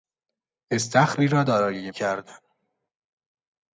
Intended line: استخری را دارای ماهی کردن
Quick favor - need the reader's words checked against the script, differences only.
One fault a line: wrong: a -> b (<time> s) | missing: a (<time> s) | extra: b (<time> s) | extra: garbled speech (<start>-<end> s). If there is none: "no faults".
missing: ماهی (1.9 s)